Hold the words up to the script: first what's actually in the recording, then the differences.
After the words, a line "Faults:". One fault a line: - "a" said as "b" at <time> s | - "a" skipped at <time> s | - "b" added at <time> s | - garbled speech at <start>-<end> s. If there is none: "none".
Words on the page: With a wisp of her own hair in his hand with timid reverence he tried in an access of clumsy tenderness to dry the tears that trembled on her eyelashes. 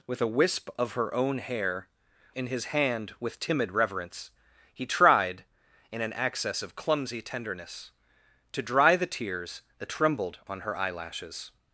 With a wisp of her own hair in his hand with timid reverence he tried in an access of clumsy tenderness to dry the tears that trembled on her eyelashes.
Faults:
none